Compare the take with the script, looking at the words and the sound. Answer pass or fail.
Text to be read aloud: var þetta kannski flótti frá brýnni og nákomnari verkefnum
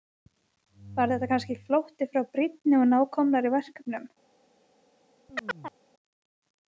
fail